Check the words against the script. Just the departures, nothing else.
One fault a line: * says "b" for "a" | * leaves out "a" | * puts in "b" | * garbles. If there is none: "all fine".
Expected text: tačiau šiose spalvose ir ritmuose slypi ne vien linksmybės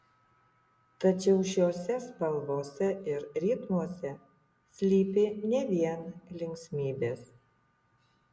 all fine